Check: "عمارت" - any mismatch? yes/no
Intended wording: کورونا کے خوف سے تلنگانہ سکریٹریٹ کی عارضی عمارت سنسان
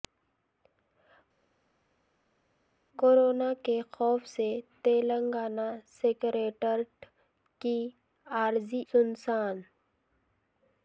yes